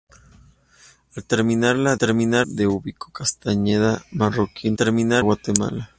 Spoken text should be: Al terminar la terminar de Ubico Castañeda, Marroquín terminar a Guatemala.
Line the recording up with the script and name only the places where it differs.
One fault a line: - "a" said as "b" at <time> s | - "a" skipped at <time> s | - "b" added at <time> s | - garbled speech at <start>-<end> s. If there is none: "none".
none